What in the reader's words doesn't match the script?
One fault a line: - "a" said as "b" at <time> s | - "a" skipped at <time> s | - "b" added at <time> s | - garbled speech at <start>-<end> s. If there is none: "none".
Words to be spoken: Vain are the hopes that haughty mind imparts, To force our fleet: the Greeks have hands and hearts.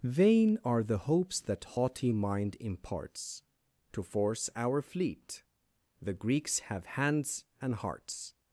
none